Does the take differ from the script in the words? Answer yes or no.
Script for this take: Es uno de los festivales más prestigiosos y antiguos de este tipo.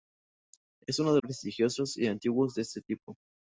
yes